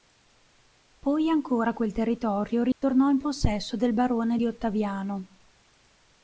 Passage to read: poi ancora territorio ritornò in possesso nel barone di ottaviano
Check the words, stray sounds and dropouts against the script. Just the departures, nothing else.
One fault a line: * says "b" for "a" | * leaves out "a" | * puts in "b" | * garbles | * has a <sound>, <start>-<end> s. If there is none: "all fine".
* puts in "quel"
* has a dropout, 2.7-2.8 s
* says "del" for "nel"